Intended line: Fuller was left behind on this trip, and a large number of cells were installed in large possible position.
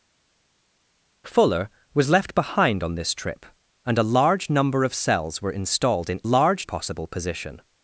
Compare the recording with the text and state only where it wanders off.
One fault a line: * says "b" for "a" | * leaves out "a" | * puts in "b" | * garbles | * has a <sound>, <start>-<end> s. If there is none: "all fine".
all fine